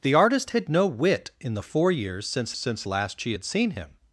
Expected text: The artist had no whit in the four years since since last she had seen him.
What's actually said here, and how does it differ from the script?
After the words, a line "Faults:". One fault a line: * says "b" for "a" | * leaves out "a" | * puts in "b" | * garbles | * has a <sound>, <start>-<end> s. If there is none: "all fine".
The artist had no whit in the four years since since last she had seen him.
Faults:
all fine